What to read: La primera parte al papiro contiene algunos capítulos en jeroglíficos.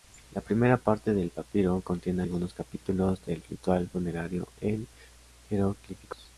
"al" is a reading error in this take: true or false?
true